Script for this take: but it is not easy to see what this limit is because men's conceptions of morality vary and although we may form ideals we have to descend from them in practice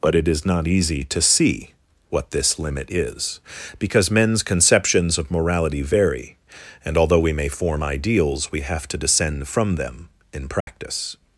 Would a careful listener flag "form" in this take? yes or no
no